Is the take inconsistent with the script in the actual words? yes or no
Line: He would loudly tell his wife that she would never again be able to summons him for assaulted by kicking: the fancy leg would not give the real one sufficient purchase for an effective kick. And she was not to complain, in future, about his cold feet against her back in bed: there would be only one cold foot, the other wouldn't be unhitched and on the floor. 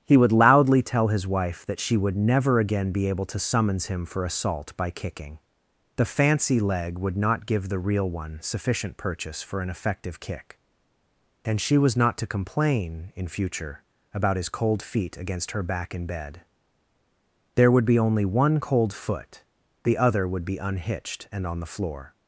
yes